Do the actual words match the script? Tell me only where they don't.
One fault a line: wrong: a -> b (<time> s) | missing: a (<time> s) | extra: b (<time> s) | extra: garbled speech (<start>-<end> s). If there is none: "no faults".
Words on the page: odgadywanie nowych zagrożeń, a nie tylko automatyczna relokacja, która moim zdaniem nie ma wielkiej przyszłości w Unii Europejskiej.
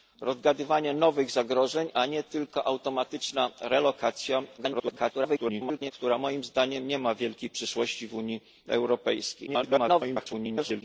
extra: garbled speech (4.6-5.9 s)
extra: garbled speech (9.5-10.8 s)